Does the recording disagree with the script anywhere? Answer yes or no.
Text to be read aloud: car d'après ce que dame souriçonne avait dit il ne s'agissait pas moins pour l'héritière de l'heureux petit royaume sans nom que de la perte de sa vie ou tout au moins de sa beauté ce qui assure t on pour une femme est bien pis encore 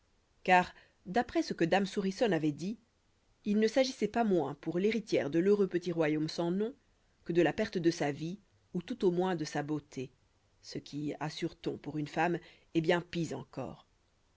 no